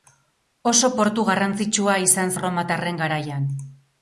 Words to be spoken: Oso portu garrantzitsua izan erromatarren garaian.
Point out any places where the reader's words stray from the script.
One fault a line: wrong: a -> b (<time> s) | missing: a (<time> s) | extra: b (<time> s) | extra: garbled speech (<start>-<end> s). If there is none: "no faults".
no faults